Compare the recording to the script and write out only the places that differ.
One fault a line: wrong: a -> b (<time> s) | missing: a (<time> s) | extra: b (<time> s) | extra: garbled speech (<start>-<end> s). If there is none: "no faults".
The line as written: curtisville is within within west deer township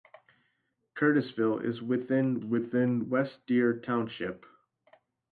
no faults